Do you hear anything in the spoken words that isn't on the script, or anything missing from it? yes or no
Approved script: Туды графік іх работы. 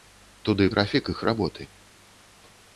no